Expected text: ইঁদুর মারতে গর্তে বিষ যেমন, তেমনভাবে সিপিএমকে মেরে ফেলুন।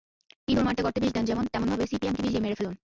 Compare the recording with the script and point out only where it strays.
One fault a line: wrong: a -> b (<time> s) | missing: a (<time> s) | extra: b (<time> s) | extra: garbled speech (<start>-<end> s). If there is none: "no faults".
extra: দেন (1.1 s)
extra: বিষ দিয়ে (2.2 s)